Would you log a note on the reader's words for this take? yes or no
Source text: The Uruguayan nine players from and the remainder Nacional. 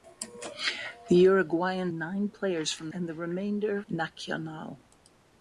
no